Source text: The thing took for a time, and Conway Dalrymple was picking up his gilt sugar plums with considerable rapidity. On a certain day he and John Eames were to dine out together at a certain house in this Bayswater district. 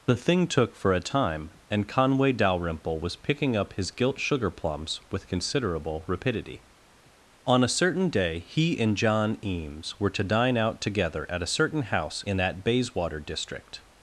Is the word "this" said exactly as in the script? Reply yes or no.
no